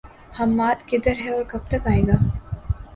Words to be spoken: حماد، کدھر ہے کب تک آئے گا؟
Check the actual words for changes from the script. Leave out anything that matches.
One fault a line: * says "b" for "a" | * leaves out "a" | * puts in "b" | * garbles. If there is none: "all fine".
* puts in "اور"